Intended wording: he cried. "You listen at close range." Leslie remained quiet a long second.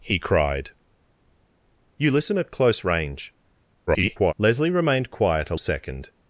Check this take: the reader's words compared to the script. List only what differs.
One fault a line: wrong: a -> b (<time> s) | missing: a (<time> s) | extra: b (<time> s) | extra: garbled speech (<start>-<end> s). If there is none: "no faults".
extra: garbled speech (3.9-4.3 s)
missing: long (5.6 s)